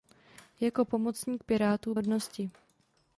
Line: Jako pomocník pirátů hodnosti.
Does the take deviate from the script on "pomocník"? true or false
false